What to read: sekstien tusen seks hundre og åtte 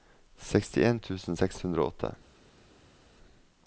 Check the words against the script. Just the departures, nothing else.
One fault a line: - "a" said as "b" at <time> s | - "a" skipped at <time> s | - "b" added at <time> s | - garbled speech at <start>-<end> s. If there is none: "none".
none